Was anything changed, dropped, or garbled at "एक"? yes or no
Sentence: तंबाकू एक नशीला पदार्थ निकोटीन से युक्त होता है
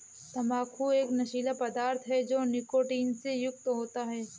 no